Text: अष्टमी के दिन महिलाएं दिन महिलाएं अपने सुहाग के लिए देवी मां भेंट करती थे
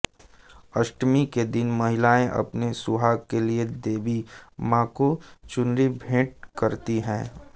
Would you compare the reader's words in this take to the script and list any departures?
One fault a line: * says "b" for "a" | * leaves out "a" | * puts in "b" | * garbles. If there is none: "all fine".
* leaves out "दिन महिलाएं"
* puts in "को चुनरी"
* says "हैं" for "थे"